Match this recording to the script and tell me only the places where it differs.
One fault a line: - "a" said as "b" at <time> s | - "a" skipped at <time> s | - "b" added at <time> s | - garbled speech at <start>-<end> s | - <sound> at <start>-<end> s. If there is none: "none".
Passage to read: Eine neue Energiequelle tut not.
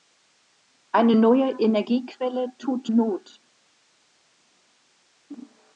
none